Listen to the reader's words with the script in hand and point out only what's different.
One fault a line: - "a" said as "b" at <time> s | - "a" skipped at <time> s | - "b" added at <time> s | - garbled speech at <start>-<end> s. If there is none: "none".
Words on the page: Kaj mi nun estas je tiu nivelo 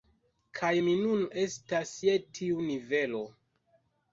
none